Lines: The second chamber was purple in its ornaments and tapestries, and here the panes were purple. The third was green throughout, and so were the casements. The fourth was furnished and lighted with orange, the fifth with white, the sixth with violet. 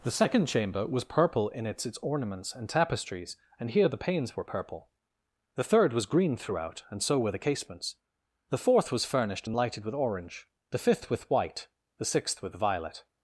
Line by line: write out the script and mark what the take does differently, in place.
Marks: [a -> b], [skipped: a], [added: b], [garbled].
The second chamber was purple in its [added: its] ornaments and tapestries, and here the panes were purple. The third was green throughout, and so were the casements. The fourth was furnished and lighted with orange, the fifth with white, the sixth with violet.